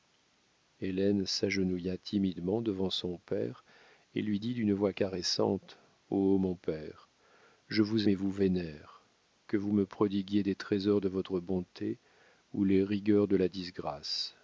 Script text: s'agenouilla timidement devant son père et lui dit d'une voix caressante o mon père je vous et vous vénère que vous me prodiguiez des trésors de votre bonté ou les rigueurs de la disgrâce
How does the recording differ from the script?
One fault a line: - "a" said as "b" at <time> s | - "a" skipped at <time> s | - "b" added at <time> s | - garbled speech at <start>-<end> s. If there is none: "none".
none